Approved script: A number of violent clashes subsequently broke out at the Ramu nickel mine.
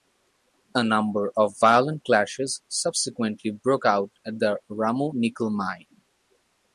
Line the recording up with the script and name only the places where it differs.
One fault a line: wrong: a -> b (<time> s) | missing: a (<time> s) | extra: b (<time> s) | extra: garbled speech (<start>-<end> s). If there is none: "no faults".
no faults